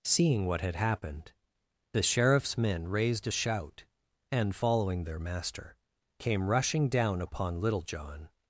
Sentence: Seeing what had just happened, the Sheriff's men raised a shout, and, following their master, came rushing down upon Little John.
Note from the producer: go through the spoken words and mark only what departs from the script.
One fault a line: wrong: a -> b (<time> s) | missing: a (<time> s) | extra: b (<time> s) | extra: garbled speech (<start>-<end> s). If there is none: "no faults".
missing: just (0.8 s)